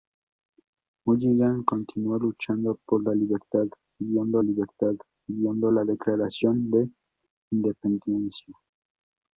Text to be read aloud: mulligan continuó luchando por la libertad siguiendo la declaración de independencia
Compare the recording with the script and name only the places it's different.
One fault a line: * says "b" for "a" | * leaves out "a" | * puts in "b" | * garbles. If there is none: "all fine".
* puts in "libertad siguiendo"